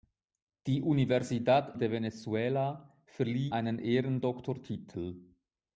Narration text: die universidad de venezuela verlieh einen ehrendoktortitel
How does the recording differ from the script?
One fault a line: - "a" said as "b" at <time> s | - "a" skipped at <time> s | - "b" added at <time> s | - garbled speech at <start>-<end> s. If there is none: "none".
none